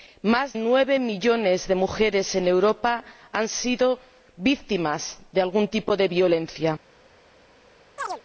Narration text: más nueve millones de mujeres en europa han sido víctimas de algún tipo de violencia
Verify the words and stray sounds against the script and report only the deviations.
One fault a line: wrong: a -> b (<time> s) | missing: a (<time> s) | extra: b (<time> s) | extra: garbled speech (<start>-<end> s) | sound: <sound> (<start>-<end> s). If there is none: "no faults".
sound: chirp (8.0-8.2 s)